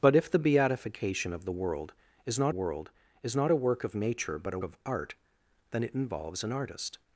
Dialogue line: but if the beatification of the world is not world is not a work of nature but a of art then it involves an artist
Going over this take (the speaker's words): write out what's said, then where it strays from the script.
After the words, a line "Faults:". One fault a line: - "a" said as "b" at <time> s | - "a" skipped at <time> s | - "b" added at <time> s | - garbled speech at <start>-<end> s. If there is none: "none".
but if the beatification of the world is not world is not a work of nature but a of art then it involves an artist
Faults:
none